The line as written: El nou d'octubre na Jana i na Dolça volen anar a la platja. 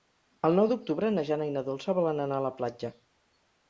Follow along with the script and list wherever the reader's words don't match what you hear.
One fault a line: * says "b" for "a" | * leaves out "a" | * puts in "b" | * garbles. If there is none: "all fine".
all fine